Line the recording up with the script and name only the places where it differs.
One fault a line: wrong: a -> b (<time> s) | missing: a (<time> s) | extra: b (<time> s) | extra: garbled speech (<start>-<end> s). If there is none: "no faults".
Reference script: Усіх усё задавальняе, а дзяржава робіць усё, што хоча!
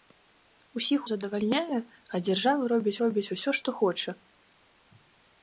missing: усё (1.0 s)
extra: робіць (3.0 s)